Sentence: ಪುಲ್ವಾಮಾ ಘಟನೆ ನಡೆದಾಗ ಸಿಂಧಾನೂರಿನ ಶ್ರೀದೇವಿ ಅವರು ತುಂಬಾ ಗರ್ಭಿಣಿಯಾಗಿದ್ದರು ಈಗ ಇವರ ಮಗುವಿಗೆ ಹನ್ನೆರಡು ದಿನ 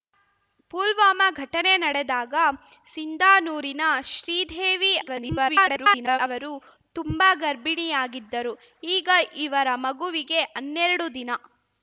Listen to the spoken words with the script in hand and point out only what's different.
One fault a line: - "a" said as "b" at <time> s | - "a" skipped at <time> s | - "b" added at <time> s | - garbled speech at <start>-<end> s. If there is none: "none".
- garbled speech at 5.0-6.2 s